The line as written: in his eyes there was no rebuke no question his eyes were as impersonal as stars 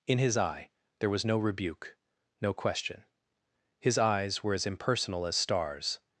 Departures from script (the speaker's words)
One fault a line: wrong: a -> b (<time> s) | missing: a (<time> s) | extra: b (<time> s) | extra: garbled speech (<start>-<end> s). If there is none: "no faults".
wrong: eyes -> eye (0.3 s)